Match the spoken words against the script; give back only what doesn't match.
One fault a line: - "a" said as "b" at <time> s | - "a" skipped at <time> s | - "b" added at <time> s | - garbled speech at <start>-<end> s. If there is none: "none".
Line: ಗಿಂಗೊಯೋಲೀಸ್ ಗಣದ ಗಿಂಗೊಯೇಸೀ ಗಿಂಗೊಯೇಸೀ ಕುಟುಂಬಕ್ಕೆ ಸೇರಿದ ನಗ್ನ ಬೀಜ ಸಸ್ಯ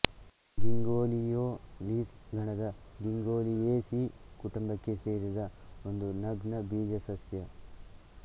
- "ಗಿಂಗೊಯೇಸೀ" skipped at 4.0 s
- "ಒಂದು" added at 5.9 s